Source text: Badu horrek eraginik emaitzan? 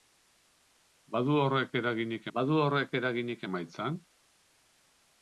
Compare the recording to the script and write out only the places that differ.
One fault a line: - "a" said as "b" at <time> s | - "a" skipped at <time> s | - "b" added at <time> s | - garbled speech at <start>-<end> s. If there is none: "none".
- "badu horrek eraginik" added at 2.4 s